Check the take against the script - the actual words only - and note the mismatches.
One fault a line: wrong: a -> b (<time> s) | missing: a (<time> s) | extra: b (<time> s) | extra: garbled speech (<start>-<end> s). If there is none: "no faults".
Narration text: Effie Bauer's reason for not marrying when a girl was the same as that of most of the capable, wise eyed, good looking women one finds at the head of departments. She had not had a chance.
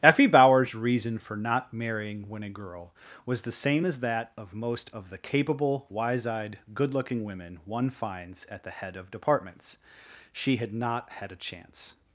no faults